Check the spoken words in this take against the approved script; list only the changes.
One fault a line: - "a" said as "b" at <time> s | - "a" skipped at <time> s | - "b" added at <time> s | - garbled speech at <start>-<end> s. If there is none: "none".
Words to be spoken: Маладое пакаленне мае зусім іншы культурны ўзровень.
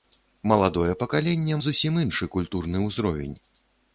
- "мае" skipped at 1.6 s